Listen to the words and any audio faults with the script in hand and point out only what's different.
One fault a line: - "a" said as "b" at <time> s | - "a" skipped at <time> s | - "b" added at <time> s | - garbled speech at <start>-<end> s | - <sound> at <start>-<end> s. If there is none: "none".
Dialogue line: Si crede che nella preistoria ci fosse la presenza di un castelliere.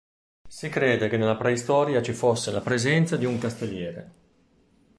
none